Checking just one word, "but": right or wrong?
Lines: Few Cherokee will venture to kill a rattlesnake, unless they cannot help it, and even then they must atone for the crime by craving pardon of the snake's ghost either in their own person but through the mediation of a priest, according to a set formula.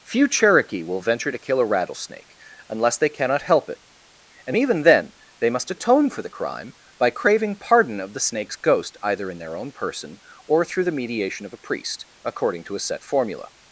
wrong